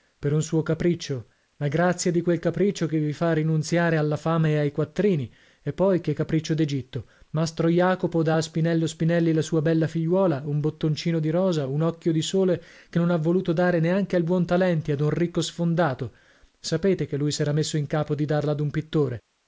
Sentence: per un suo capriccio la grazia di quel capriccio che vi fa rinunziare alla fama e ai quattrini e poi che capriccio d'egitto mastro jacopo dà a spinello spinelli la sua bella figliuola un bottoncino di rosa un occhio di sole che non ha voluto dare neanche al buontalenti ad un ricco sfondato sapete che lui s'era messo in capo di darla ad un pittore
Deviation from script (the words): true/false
false